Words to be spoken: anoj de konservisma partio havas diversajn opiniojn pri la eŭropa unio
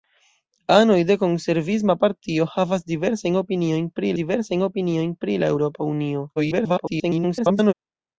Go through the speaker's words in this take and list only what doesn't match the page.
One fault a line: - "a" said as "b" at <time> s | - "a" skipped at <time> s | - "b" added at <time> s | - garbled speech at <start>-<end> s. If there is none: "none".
- "diversajn opiniojn pri" added at 4.2 s
- garbled speech at 6.4-7.7 s